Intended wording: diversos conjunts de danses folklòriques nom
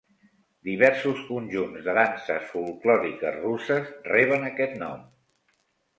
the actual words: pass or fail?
fail